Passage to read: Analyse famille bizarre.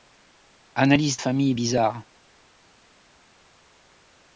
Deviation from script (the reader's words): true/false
false